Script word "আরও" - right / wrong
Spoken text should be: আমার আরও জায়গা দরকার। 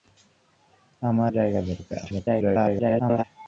wrong